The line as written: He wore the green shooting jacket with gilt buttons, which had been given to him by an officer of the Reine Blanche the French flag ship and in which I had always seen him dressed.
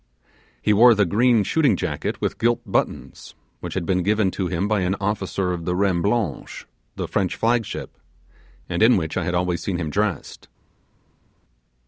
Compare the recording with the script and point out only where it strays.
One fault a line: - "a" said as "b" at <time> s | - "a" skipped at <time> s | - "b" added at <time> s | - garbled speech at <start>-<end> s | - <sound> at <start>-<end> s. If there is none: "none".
none